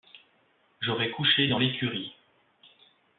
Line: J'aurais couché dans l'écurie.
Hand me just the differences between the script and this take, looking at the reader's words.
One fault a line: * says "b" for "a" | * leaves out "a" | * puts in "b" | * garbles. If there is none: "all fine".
all fine